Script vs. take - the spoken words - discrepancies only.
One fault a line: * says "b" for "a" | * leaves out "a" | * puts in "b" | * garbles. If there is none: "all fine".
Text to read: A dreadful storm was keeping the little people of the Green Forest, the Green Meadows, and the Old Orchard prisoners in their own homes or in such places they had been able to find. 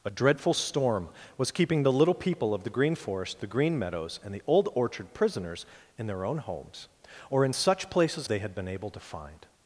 all fine